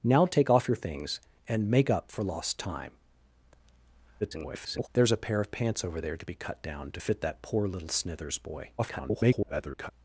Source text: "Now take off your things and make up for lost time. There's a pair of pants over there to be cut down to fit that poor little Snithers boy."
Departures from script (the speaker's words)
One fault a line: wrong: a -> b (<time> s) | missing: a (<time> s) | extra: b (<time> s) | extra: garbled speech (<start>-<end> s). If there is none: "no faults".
extra: garbled speech (4.2-4.9 s)
extra: garbled speech (8.8-9.9 s)